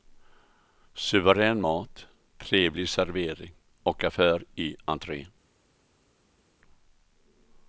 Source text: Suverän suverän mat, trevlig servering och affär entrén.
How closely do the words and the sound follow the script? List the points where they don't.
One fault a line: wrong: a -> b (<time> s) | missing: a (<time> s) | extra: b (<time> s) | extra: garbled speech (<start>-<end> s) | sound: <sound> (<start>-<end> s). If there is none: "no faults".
missing: suverän (1.6 s)
extra: i (4.5 s)